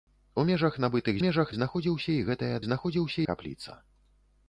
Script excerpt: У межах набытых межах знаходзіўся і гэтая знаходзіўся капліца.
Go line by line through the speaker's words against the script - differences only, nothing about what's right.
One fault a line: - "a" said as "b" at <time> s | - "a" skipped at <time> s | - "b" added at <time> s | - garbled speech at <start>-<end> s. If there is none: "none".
none